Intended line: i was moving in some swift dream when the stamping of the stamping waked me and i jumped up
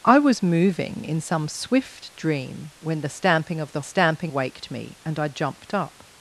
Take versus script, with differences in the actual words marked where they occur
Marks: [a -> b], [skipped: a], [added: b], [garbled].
i was moving in some swift dream when the stamping of the stamping waked me and i jumped up